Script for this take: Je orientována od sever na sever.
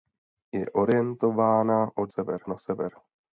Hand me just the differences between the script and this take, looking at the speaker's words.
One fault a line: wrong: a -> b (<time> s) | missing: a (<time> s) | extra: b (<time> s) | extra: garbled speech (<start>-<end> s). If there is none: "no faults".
no faults